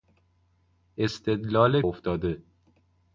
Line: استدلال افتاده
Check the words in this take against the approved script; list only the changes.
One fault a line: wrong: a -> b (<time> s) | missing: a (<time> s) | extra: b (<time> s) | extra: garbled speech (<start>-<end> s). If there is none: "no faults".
no faults